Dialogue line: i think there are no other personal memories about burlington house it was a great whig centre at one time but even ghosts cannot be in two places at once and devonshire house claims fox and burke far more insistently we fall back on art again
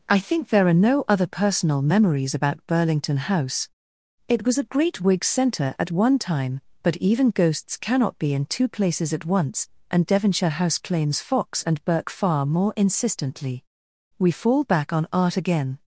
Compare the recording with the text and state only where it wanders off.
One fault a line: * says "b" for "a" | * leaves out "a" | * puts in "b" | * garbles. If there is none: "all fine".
all fine